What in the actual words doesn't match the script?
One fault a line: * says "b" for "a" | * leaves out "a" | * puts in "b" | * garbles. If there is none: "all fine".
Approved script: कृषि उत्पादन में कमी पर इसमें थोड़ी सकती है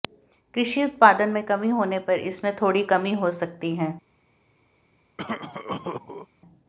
* puts in "होने"
* puts in "कमी हो"